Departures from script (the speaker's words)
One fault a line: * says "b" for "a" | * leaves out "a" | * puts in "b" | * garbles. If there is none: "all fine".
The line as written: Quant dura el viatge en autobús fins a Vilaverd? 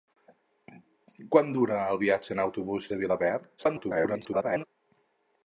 * leaves out "fins"
* garbles